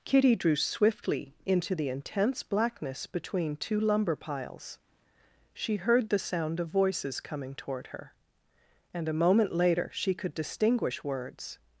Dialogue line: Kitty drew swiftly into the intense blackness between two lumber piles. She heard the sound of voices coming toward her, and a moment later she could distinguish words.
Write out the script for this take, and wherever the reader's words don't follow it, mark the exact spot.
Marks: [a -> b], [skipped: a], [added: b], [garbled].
Kitty drew swiftly into the intense blackness between two lumber piles. She heard the sound of voices coming toward her, and a moment later she could distinguish words.